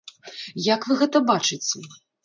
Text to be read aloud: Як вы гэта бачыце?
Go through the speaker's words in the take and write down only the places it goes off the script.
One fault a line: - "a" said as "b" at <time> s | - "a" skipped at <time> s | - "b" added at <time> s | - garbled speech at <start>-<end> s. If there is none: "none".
none